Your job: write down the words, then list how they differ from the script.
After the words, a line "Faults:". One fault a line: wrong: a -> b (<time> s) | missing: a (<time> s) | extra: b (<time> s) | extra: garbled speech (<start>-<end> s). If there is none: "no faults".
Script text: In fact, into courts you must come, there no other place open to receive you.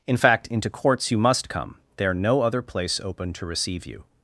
In fact, into courts you must come, there no other place open to receive you.
Faults:
no faults